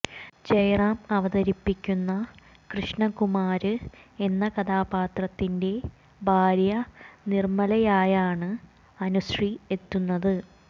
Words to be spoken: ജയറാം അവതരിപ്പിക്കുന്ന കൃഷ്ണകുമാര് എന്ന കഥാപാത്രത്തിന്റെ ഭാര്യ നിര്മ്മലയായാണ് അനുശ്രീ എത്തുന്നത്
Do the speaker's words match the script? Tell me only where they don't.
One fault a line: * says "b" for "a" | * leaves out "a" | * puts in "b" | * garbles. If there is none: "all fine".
all fine